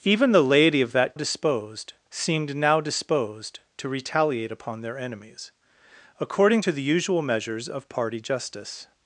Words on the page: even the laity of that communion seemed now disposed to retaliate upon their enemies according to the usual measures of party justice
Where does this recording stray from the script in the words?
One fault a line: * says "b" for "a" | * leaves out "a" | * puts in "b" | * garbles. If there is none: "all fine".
* says "disposed" for "communion"